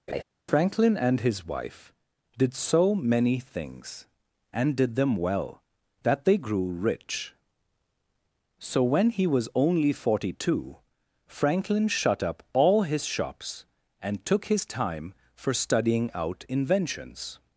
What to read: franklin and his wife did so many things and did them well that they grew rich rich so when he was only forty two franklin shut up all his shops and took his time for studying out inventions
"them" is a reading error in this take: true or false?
false